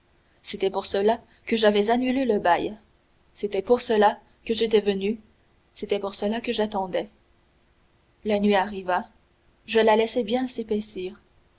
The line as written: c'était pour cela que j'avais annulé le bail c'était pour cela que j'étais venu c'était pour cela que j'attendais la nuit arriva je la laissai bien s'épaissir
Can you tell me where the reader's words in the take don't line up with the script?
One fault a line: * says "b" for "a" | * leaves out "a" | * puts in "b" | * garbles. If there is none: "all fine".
all fine